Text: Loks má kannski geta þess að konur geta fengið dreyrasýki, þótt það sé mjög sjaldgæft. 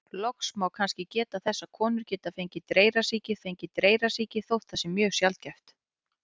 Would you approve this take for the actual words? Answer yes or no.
no